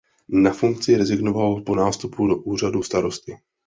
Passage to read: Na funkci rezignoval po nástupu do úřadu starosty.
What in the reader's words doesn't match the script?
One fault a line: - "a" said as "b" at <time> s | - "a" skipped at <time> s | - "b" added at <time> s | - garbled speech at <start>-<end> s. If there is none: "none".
none